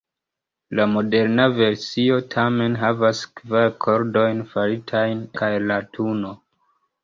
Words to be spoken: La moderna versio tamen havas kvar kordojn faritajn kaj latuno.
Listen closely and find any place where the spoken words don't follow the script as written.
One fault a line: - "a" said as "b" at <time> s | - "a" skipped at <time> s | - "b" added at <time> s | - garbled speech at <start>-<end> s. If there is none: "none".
none